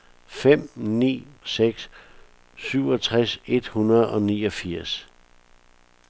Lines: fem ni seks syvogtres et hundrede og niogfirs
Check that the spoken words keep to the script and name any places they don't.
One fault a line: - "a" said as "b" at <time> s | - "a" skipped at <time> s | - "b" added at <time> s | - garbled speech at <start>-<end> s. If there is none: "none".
none